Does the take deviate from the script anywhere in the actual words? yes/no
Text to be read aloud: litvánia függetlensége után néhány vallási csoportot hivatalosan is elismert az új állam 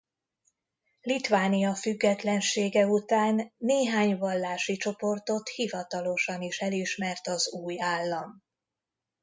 no